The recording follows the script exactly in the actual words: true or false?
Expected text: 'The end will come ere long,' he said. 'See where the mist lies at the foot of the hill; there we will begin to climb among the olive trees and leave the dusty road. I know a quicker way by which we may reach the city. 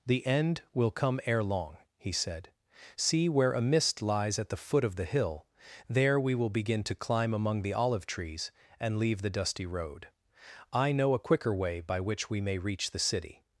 false